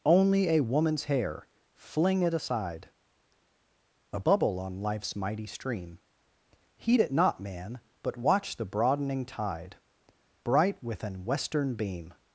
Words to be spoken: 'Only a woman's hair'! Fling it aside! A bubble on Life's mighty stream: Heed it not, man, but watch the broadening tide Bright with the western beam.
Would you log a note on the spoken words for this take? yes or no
yes